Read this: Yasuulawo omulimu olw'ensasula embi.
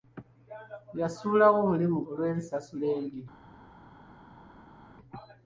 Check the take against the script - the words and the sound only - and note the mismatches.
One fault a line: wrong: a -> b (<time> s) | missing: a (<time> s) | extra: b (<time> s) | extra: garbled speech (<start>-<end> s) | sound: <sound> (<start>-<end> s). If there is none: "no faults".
no faults